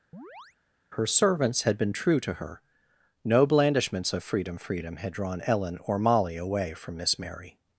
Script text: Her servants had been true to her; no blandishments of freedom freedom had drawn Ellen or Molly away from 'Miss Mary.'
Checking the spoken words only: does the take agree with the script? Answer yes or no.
yes